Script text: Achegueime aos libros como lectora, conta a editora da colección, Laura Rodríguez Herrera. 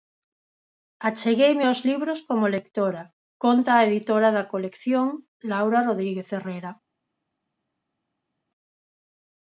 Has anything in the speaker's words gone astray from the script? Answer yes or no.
no